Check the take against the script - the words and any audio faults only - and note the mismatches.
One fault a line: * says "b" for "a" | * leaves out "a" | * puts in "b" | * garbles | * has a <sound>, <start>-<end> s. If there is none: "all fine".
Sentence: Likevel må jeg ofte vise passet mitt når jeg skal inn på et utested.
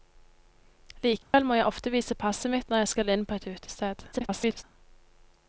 * has a dropout, 1.2-1.3 s
* garbles